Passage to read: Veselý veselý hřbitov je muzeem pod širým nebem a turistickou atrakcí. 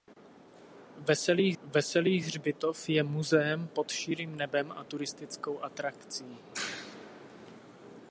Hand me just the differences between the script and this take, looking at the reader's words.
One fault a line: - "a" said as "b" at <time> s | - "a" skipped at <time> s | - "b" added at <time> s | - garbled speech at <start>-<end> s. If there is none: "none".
none